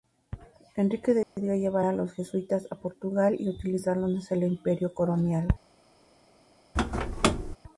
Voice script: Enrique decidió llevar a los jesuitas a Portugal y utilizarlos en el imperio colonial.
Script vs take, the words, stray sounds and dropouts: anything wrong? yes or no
yes